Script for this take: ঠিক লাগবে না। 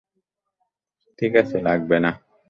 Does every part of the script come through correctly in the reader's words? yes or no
no